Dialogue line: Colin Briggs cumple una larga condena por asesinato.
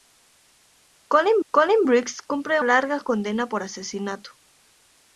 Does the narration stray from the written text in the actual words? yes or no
yes